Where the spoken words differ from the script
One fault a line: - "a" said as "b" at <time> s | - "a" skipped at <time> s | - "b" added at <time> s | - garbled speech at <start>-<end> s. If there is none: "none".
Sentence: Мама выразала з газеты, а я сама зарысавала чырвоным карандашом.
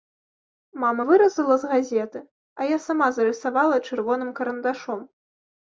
none